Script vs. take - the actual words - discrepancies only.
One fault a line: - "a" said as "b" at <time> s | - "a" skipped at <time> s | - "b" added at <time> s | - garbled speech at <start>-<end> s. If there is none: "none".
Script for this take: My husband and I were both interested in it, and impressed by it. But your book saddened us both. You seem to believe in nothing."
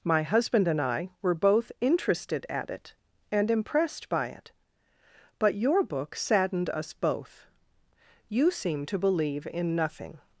- "in" said as "at" at 2.5 s